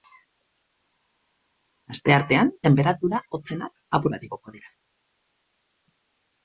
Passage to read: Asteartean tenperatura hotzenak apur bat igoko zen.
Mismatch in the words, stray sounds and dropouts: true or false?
true